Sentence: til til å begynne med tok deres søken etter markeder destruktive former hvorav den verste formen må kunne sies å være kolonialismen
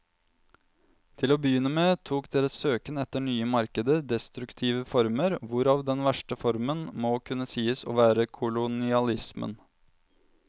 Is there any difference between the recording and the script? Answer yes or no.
yes